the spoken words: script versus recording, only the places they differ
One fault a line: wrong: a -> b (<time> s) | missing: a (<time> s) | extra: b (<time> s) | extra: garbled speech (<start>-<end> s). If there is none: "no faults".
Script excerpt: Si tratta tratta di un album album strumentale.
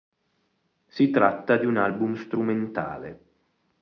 missing: tratta (1.6 s)
missing: album (2.1 s)